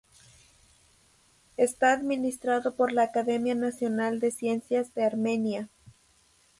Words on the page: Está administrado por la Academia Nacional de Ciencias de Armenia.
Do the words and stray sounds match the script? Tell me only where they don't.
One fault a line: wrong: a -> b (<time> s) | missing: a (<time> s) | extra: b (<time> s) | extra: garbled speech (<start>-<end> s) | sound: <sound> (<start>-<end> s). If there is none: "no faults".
no faults